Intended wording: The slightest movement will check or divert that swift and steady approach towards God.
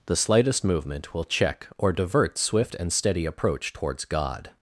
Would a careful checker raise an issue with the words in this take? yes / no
yes